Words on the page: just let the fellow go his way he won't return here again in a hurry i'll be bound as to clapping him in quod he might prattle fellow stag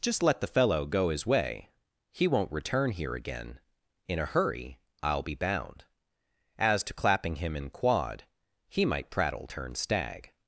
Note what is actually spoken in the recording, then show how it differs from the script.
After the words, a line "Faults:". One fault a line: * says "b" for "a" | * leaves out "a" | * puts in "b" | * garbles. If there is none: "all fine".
just let the fellow go his way he won't return here again in a hurry i'll be bound as to clapping him in quod he might prattle turn stag
Faults:
* says "turn" for "fellow"